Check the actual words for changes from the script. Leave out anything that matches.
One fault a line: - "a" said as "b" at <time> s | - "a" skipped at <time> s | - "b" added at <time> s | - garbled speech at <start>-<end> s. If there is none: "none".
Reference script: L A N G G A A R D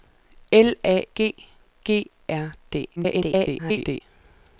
- "N" skipped at 1.1 s
- "A A" skipped at 2.1 s
- garbled speech at 3.0-4.0 s